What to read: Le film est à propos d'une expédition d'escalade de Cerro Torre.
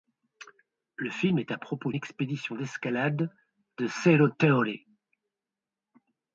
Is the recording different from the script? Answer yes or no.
yes